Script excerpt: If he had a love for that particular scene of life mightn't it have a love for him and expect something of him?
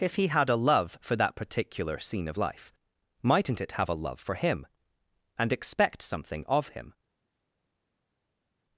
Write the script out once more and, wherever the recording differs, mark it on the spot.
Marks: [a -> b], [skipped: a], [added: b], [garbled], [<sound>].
If he had a love for that particular scene of life mightn't it have a love for him and expect something of him?